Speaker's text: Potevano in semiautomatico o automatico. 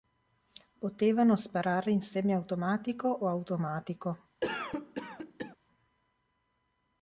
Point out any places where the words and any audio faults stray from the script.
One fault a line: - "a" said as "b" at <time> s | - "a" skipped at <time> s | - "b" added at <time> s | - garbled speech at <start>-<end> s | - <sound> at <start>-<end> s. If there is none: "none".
- "sparare" added at 1.4 s
- cough at 4.4-5.6 s